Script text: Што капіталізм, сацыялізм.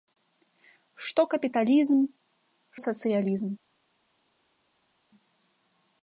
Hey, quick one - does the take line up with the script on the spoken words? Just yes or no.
yes